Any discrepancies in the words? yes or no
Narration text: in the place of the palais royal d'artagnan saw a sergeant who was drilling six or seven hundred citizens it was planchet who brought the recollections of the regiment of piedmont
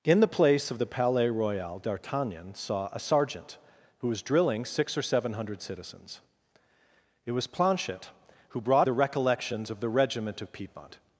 no